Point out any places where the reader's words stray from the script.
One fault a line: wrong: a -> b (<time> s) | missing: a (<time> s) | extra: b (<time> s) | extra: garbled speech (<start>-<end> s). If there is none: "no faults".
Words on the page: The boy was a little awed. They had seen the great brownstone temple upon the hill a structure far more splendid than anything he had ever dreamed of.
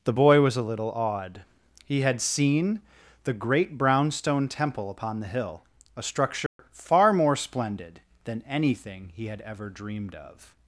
wrong: They -> He (1.8 s)